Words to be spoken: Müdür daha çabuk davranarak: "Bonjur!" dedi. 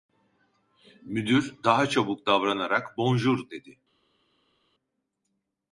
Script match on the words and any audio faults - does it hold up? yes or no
yes